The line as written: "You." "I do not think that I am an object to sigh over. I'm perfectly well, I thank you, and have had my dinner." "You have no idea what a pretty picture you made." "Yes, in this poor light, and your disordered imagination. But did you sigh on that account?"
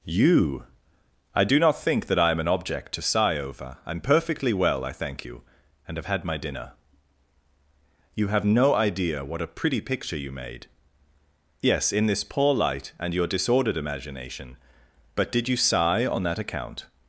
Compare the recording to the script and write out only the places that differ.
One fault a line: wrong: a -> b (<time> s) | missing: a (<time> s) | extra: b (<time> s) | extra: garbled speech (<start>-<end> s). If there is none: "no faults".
no faults